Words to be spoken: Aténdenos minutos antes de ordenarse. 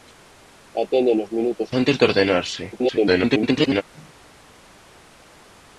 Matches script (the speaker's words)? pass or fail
fail